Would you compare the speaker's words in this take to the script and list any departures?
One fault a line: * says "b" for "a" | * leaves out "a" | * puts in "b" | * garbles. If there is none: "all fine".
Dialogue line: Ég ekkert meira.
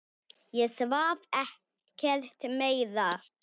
* puts in "svaf"